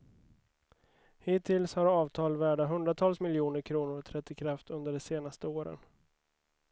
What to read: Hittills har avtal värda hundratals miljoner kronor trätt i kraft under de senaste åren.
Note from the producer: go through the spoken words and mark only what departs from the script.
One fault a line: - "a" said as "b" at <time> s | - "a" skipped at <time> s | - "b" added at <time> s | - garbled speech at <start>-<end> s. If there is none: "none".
none